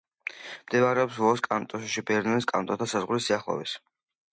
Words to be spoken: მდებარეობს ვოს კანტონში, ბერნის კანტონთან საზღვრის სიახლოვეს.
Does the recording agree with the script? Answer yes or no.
yes